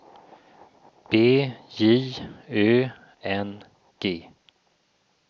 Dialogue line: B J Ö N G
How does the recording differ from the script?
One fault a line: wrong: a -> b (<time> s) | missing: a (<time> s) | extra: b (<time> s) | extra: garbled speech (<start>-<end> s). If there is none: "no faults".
no faults